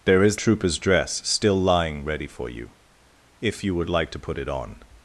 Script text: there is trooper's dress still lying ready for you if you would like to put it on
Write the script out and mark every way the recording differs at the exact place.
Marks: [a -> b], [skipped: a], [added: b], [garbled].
there is trooper's dress still lying ready for you if you would like to put it on